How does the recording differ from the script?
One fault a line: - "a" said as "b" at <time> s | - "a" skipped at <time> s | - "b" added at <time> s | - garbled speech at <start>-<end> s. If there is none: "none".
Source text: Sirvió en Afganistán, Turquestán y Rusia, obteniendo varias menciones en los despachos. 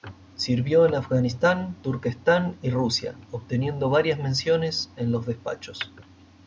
none